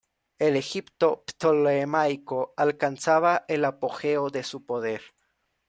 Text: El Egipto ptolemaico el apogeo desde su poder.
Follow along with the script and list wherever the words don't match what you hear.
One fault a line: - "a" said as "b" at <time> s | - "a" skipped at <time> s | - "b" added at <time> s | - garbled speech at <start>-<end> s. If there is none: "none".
- "alcanzaba" added at 2.6 s
- "desde" said as "de" at 4.3 s